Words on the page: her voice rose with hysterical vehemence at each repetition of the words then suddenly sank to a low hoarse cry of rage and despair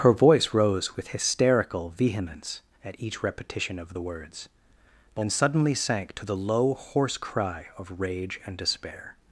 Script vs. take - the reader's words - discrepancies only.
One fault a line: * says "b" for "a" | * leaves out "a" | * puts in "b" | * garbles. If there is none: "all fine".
* says "the" for "a"